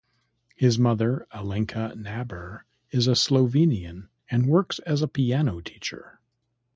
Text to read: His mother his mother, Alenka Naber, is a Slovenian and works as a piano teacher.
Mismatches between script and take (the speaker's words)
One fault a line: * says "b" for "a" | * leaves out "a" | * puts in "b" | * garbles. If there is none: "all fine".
* leaves out "his mother"